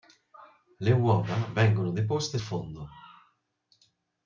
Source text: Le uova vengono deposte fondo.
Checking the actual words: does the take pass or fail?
pass